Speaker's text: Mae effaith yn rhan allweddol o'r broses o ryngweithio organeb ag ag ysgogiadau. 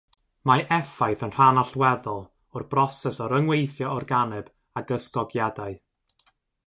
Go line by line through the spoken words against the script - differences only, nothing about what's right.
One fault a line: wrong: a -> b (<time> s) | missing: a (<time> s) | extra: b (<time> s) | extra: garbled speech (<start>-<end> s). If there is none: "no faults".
missing: ag (4.9 s)